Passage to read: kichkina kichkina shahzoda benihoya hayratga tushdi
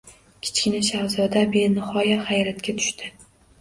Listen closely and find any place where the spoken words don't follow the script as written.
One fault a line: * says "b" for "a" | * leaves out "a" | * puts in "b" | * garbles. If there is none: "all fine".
* leaves out "kichkina"